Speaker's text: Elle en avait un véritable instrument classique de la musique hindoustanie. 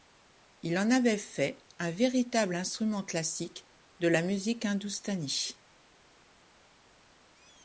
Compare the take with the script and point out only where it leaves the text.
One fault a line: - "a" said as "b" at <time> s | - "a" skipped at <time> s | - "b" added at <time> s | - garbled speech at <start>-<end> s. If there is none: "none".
- "Elle" said as "Il" at 0.6 s
- "fait" added at 1.2 s